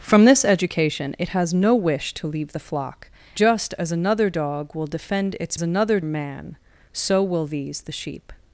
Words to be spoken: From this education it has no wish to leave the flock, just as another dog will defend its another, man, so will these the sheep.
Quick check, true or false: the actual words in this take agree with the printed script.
true